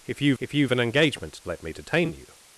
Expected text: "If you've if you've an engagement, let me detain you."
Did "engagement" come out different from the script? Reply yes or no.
no